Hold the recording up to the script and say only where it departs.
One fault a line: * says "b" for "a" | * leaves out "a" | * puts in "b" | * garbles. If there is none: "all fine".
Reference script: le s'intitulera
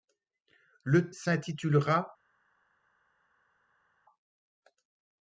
all fine